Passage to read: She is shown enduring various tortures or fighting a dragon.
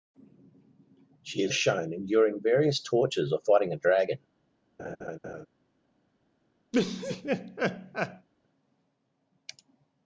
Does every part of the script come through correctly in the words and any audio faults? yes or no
no